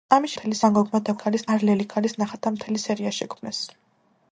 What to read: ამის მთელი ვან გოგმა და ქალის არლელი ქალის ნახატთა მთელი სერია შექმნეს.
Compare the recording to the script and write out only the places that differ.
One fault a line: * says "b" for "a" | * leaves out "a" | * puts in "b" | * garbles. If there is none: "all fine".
all fine